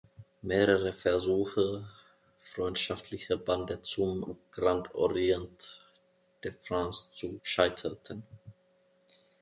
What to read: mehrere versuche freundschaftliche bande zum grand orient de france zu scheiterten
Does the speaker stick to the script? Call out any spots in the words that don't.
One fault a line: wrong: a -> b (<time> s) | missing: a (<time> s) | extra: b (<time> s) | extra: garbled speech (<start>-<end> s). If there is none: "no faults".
no faults